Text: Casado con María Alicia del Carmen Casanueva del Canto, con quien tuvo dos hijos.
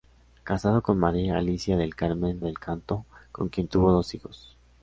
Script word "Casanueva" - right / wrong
wrong